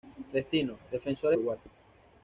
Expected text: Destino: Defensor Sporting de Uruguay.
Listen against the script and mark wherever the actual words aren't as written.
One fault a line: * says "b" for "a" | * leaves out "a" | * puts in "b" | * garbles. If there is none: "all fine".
* leaves out "Sporting"